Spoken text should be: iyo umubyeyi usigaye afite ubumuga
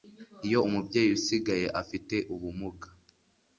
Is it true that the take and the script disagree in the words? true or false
false